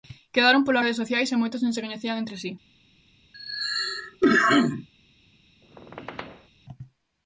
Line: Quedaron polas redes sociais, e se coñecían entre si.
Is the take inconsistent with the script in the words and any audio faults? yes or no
yes